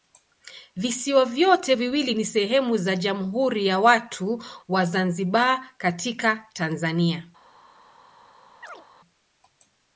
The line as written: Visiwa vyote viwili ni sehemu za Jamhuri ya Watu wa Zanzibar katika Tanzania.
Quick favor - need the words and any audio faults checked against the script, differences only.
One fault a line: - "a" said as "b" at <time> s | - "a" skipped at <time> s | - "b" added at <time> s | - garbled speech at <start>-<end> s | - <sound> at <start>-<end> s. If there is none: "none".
- chirp at 8.6-8.8 s